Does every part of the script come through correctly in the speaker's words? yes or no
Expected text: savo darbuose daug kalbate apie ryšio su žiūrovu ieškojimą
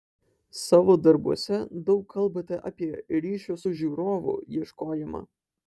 yes